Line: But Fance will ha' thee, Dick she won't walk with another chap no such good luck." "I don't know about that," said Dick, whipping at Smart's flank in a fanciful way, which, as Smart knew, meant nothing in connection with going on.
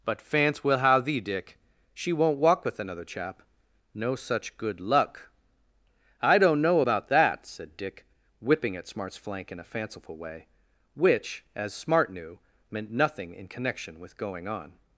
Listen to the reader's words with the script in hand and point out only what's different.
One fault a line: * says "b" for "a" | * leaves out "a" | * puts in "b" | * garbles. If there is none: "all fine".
all fine